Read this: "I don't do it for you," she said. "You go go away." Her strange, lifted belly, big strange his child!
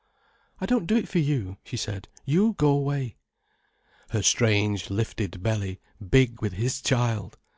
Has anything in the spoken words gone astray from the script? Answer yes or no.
yes